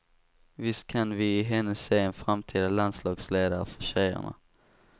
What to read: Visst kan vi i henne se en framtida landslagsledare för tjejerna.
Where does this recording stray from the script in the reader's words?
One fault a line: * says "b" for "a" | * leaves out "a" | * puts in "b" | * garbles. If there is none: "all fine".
all fine